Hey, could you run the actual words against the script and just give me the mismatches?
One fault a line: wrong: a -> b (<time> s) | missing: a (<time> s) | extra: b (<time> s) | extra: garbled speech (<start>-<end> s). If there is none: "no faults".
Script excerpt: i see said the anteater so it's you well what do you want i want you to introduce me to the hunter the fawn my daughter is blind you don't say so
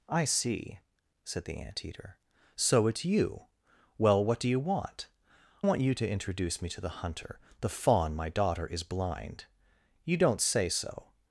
missing: i (5.1 s)